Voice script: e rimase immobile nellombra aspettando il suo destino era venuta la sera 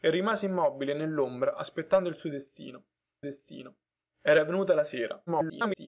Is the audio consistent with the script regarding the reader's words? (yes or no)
no